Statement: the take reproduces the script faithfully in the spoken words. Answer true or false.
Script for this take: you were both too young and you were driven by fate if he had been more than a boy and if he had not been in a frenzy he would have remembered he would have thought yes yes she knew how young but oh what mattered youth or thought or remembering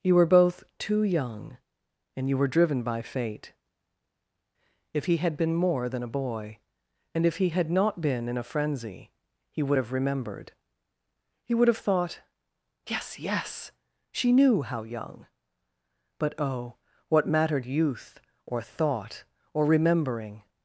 true